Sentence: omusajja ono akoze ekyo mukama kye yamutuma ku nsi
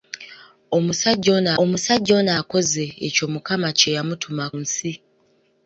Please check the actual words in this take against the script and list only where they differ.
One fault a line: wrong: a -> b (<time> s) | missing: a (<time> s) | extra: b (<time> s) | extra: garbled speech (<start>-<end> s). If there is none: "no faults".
extra: omusajja ono (1.6 s)
missing: ku (4.4 s)